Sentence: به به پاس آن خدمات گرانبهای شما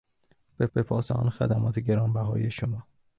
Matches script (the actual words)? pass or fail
pass